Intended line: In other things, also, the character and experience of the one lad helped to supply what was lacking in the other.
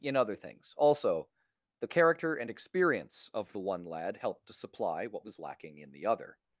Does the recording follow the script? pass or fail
pass